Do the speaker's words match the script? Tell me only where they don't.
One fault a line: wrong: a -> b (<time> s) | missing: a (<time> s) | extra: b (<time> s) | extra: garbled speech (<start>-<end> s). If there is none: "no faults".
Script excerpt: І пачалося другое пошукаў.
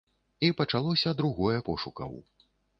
no faults